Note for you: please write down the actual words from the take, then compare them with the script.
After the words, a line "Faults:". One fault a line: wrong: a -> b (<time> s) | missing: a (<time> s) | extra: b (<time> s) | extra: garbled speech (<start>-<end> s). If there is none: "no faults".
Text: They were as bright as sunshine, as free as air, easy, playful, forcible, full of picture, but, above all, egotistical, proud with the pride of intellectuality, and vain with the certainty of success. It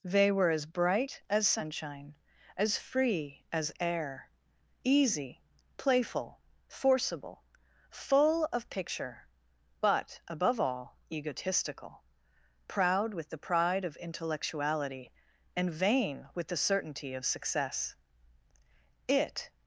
They were as bright as sunshine, as free as air, easy, playful, forcible, full of picture, but, above all, egotistical, proud with the pride of intellectuality, and vain with the certainty of success. It
Faults:
no faults